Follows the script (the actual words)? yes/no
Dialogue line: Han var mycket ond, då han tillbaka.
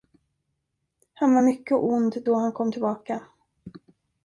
no